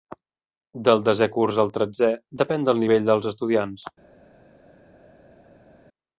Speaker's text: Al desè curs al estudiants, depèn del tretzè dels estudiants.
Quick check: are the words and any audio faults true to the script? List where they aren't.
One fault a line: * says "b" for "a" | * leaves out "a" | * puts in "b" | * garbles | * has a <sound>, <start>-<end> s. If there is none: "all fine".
* says "Del" for "Al"
* says "tretzè" for "estudiants"
* says "nivell" for "tretzè"